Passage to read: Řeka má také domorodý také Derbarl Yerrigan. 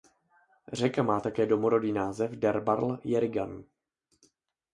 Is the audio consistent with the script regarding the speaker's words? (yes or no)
no